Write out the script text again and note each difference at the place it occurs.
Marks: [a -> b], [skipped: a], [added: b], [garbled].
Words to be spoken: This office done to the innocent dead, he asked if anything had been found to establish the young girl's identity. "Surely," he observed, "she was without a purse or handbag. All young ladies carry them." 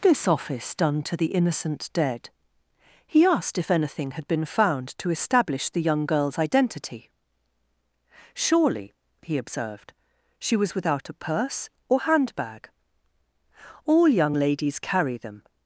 This office done to the innocent dead, he asked if anything had been found to establish the young girl's identity. "Surely," he observed, "she was without a purse or handbag. All young ladies carry them."